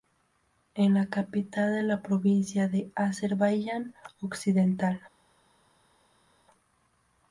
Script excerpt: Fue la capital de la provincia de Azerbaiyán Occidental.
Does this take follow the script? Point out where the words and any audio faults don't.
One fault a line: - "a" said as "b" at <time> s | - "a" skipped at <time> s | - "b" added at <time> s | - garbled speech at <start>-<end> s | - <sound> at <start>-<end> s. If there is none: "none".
- "Fue" said as "Es" at 0.7 s